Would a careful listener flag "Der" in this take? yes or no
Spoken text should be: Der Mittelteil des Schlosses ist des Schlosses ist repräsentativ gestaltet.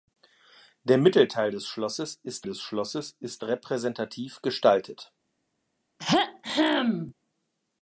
no